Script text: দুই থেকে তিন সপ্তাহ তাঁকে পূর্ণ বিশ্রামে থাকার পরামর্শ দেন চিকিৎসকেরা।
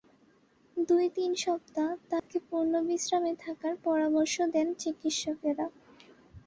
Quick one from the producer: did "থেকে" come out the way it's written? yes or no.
no